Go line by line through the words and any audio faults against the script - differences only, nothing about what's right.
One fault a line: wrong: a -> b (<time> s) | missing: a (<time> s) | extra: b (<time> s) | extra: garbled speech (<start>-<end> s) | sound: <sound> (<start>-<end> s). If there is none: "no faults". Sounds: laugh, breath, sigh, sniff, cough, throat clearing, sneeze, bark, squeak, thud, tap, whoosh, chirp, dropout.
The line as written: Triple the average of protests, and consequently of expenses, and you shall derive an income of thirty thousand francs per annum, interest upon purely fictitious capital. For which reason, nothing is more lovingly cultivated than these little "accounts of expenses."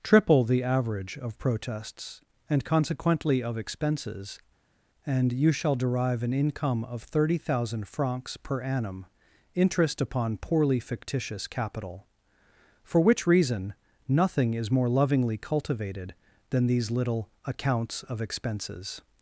wrong: purely -> poorly (10.4 s)